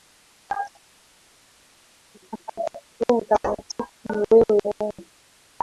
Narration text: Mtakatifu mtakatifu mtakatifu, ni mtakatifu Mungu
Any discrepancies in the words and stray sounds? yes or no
yes